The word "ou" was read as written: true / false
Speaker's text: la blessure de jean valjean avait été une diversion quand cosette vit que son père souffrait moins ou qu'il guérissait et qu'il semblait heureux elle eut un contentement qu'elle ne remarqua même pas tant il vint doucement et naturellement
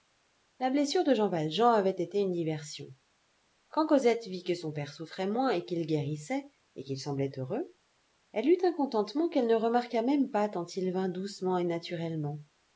false